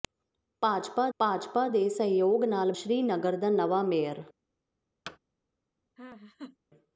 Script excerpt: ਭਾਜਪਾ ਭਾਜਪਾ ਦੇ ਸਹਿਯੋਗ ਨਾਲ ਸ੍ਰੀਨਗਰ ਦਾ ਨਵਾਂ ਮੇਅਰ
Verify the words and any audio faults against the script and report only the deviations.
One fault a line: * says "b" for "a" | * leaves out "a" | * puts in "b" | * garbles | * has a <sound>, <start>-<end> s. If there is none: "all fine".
* has a thud, 5.1-5.2 s
* has a laugh, 6.0-6.6 s